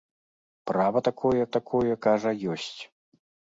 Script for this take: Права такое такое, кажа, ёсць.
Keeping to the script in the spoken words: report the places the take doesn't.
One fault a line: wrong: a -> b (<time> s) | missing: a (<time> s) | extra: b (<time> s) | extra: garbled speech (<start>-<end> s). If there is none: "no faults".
no faults